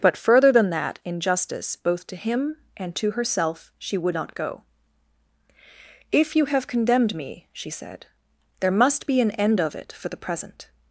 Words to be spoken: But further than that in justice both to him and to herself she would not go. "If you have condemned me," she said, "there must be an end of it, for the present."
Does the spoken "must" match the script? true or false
true